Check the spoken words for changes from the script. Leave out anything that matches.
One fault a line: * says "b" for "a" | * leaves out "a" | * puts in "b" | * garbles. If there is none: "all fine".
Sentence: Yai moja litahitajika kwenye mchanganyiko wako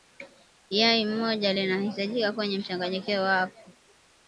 all fine